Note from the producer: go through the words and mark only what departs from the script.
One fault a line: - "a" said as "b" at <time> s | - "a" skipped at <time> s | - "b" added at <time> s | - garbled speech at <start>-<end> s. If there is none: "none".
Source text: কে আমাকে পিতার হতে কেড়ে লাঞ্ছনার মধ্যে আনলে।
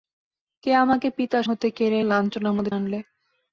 none